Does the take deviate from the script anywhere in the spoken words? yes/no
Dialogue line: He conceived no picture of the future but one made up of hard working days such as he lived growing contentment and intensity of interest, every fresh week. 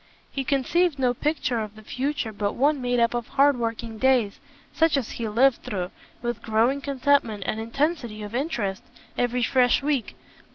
yes